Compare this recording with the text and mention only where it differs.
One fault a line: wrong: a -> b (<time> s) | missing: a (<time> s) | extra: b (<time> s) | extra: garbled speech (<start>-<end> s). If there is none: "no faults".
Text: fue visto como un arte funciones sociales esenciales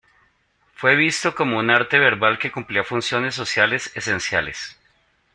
extra: verbal que cumplía (2.0 s)